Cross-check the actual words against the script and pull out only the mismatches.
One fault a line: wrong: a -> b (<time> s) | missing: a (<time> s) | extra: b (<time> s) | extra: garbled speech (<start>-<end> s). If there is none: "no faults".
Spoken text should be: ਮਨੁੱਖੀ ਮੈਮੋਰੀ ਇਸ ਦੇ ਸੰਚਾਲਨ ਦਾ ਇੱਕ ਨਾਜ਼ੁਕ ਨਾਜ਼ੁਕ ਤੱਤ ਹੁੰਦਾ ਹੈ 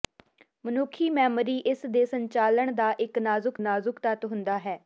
no faults